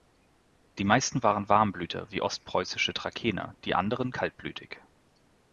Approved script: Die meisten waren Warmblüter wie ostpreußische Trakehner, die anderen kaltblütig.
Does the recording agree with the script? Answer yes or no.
yes